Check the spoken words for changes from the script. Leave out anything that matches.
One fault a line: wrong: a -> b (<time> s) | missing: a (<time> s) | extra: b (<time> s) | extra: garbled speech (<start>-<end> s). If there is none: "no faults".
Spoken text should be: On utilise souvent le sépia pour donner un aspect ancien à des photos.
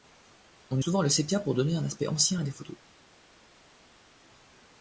missing: utilise (0.8 s)